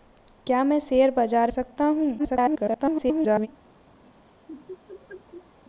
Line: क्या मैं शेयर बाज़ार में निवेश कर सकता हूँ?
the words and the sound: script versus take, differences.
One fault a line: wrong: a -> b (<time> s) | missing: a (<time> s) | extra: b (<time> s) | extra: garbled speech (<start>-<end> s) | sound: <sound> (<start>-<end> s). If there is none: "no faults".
missing: में निवेश कर (1.5 s)
extra: garbled speech (2.2-3.5 s)
sound: laugh (4.0-5.6 s)